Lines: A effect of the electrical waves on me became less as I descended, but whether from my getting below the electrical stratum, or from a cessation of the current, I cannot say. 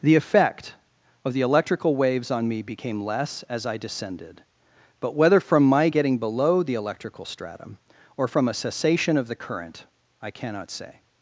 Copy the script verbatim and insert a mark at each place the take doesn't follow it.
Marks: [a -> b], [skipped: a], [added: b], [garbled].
[A -> The] effect of the electrical waves on me became less as I descended, but whether from my getting below the electrical stratum, or from a cessation of the current, I cannot say.